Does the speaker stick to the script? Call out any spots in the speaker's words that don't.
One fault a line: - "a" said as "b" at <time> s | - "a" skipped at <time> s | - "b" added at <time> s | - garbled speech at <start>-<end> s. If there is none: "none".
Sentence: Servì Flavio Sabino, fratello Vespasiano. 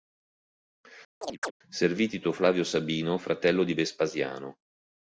- "Tito" added at 2.1 s
- "di" added at 3.6 s